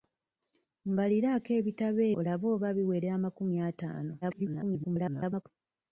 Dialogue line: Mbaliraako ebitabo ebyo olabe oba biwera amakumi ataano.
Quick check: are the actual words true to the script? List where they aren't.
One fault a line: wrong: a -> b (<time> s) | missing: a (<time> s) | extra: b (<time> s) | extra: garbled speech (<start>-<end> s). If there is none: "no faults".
missing: ebyo (2.0 s)
extra: garbled speech (4.2-5.4 s)